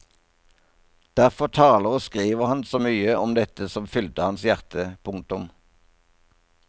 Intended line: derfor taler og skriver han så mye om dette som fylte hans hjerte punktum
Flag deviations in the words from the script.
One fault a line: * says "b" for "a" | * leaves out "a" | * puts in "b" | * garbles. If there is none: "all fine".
all fine